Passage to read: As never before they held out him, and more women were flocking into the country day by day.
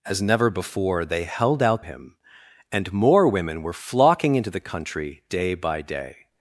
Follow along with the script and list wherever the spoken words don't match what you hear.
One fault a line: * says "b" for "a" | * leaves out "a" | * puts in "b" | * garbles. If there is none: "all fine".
all fine